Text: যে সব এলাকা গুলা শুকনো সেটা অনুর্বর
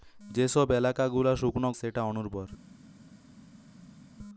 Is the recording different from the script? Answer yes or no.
no